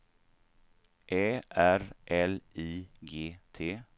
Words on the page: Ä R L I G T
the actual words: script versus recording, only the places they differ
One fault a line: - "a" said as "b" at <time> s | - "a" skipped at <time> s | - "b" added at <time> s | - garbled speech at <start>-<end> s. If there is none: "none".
none